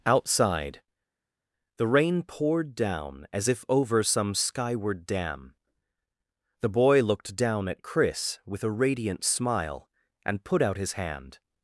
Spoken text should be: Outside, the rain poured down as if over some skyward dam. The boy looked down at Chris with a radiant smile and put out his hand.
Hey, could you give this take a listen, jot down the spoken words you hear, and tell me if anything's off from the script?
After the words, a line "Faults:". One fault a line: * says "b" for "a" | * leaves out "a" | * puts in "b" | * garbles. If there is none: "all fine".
Outside, the rain poured down as if over some skyward dam. The boy looked down at Chris with a radiant smile and put out his hand.
Faults:
all fine